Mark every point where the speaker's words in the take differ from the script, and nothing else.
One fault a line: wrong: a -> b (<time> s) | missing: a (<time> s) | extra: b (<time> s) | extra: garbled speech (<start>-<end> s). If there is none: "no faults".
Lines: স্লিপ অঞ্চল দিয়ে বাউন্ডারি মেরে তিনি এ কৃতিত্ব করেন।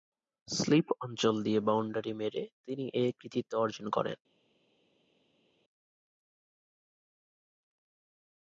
extra: অর্জন (3.5 s)